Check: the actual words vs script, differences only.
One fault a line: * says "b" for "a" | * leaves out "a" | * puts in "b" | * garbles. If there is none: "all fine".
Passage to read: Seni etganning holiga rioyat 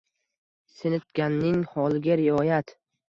all fine